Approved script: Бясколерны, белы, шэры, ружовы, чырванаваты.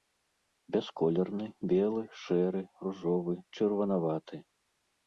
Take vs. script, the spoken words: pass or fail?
pass